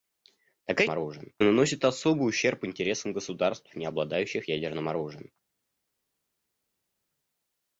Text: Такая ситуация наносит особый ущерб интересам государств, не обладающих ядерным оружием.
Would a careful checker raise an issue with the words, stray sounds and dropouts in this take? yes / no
yes